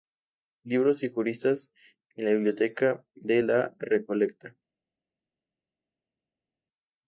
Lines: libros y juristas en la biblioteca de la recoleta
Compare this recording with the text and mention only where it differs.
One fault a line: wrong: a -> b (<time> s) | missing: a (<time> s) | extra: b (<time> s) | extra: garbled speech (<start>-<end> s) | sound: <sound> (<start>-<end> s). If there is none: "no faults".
no faults